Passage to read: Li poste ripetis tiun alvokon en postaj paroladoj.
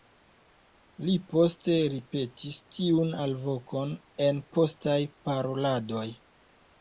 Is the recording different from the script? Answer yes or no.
no